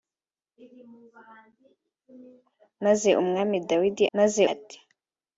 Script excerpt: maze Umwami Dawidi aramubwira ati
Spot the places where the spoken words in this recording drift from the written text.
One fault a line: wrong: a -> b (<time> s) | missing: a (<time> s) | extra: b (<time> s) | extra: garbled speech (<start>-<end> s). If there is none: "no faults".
wrong: aramubwira -> maze (4.2 s)